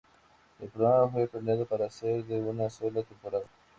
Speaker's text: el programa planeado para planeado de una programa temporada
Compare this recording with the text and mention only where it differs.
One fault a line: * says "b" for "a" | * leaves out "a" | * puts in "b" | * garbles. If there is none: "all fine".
* puts in "fue"
* says "ser" for "planeado"
* says "sola" for "programa"